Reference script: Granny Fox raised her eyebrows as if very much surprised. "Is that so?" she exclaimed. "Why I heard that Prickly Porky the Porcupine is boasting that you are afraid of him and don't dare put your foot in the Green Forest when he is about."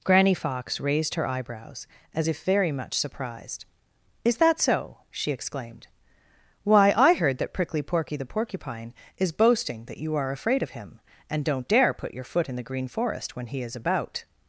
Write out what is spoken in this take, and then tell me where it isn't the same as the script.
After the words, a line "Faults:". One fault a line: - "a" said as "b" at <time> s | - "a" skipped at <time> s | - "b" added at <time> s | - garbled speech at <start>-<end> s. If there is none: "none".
Granny Fox raised her eyebrows as if very much surprised. "Is that so?" she exclaimed. "Why I heard that Prickly Porky the Porcupine is boasting that you are afraid of him and don't dare put your foot in the Green Forest when he is about."
Faults:
none